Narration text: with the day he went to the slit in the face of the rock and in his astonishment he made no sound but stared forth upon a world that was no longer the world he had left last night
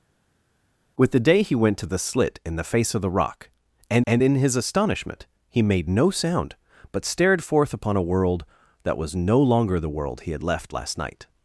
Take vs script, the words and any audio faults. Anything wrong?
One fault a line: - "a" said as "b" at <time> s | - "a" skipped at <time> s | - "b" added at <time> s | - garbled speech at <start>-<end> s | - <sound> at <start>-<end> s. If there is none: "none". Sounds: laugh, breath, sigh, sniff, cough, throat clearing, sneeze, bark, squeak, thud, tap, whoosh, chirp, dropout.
- "and" added at 4.1 s